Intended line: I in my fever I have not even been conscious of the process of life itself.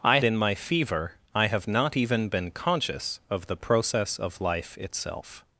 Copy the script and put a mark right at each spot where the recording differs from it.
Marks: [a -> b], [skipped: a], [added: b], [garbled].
I in my fever I have not even been conscious of the process of life itself.